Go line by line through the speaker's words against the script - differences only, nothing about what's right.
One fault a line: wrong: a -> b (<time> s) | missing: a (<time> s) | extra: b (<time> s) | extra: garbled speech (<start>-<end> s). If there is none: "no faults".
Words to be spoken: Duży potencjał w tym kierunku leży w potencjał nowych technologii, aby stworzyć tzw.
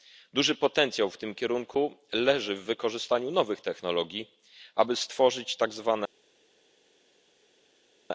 wrong: potencjał -> wykorzystaniu (2.6 s)